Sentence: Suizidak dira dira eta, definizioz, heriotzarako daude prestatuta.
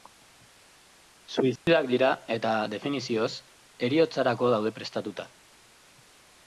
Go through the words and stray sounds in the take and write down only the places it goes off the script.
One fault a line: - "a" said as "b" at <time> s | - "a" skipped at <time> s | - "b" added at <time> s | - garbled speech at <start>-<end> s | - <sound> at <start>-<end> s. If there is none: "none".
- dropout at 1.6-1.7 s
- "dira" skipped at 2.1 s